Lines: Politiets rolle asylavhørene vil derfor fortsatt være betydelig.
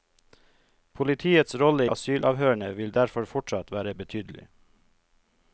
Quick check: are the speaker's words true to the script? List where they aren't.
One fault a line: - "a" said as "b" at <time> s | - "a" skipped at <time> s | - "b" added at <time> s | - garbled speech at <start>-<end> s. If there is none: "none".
none